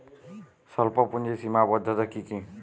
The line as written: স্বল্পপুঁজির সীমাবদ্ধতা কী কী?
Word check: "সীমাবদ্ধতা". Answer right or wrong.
right